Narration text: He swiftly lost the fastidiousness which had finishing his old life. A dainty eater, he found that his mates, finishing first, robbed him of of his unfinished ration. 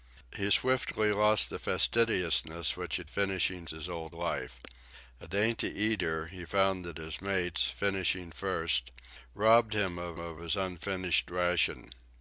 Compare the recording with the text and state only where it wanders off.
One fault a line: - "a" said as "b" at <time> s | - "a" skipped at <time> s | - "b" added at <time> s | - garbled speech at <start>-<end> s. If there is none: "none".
none